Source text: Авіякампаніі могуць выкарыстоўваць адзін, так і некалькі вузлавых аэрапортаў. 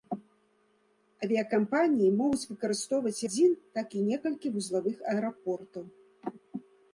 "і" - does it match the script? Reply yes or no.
yes